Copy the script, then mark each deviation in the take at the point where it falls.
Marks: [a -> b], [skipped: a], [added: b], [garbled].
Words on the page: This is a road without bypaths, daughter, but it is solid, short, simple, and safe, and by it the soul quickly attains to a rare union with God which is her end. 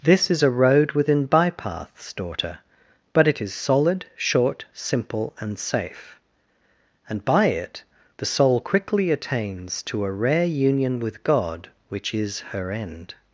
This is a road [without -> within] bypaths, daughter, but it is solid, short, simple, and safe, and by it the soul quickly attains to a rare union with God which is her end.